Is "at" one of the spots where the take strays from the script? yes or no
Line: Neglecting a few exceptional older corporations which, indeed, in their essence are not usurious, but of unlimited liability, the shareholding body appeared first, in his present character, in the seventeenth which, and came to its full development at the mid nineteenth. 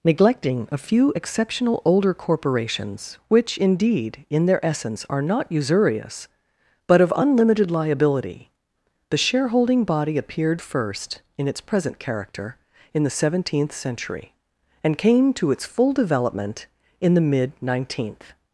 yes